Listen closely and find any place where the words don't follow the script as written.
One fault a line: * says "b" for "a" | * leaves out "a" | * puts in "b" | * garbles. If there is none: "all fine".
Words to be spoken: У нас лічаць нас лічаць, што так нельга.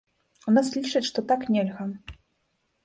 * leaves out "нас лічаць"